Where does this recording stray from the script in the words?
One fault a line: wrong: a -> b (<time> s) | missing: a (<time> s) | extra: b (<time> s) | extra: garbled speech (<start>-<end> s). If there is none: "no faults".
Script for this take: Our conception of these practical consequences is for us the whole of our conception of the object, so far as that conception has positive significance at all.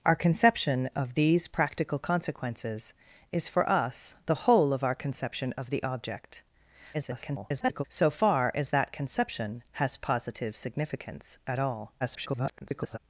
extra: garbled speech (6.9-7.8 s)
extra: garbled speech (12.0-13.0 s)